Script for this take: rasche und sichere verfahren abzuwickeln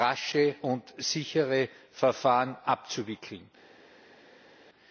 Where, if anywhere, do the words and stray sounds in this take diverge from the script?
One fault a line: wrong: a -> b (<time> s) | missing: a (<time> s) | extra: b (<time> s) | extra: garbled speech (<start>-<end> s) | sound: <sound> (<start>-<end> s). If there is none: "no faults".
no faults